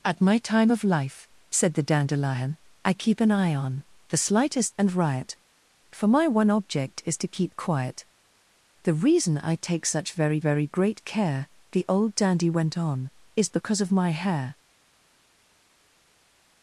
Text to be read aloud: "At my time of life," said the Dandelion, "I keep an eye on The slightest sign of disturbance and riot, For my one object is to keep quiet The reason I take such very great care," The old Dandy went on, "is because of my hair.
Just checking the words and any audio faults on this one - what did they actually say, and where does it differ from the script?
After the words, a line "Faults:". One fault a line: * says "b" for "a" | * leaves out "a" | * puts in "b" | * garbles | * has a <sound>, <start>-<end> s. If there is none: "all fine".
"At my time of life," said the Dandelion, "I keep an eye on The slightest and riot, For my one object is to keep quiet The reason I take such very very great care," The old Dandy went on, "is because of my hair.
Faults:
* leaves out "sign of disturbance"
* puts in "very"